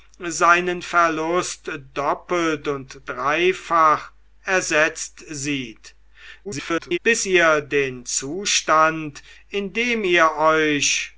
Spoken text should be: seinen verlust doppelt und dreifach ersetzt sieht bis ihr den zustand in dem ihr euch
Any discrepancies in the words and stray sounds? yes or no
yes